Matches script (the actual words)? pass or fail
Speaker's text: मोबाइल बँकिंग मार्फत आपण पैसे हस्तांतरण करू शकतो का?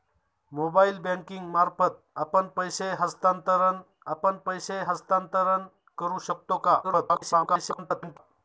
fail